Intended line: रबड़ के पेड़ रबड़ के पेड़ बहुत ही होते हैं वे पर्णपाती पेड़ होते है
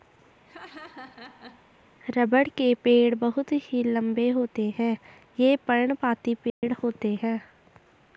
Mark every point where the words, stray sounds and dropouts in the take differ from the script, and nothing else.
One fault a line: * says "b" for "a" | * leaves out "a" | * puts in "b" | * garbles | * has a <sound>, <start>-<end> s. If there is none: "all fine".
* has a laugh, 0.4-1.7 s
* leaves out "रबड़ के पेड़"
* puts in "लंबे"
* says "ये" for "वे"
* has a dropout, 6.5-6.6 s